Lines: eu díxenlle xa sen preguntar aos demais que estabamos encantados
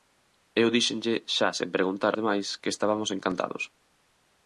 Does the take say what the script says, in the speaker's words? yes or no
no